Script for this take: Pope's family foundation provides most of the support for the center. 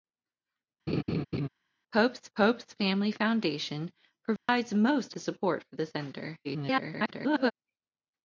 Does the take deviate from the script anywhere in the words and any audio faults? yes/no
yes